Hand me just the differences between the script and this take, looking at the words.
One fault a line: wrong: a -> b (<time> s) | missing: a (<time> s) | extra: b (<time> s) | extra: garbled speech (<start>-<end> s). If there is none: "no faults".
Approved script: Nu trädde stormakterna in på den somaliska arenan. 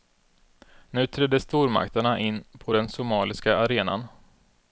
no faults